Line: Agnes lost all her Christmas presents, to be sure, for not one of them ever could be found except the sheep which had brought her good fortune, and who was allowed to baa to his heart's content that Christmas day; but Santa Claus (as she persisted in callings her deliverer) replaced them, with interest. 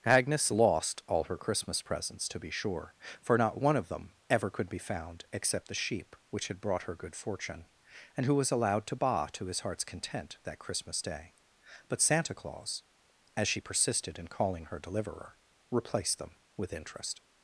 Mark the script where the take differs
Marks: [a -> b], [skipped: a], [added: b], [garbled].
Agnes lost all her Christmas presents, to be sure, for not one of them ever could be found except the sheep which had brought her good fortune, and who was allowed to baa to his heart's content that Christmas day; but Santa Claus (as she persisted in [callings -> calling] her deliverer) replaced them, with interest.